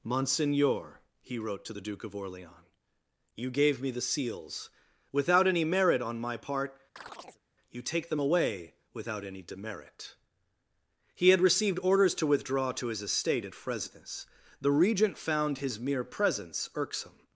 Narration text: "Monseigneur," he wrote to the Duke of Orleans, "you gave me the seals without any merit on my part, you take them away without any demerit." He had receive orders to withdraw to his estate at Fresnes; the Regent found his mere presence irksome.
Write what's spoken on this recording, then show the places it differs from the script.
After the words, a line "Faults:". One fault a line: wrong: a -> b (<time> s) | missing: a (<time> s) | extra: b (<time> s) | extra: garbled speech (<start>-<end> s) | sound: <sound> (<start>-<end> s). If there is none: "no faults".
"Monseigneur," he wrote to the Duke of Orleans, "you gave me the seals without any merit on my part, you take them away without any demerit." He had received orders to withdraw to his estate at Fresnes; the Regent found his mere presence irksome.
Faults:
sound: chirp (7.0-7.4 s)
wrong: receive -> received (11.4 s)